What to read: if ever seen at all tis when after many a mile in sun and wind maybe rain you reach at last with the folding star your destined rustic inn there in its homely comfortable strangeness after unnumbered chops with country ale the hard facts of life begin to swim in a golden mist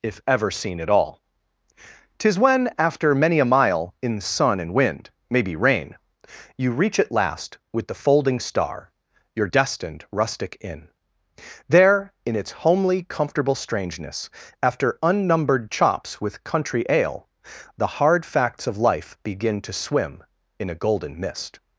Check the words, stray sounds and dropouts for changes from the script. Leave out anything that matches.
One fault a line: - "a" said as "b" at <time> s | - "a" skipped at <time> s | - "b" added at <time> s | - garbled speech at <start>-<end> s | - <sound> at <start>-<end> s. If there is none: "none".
none